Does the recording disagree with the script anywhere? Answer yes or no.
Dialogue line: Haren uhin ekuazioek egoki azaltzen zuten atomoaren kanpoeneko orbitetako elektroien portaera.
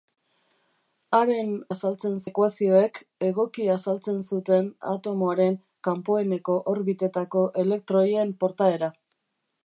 yes